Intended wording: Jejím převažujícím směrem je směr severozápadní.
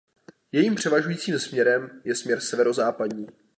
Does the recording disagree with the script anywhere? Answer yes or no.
no